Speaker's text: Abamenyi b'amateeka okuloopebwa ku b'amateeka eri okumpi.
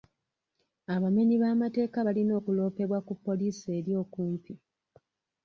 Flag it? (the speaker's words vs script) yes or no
yes